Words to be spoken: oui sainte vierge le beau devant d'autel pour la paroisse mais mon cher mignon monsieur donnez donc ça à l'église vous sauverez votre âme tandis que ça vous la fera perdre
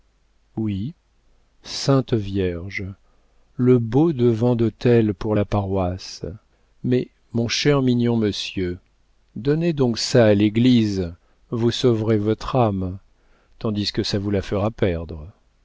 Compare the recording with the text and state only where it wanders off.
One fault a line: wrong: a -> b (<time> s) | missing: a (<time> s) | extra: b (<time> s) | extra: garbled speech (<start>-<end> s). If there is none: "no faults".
no faults